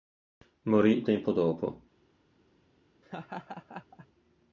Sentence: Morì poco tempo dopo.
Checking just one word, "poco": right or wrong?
wrong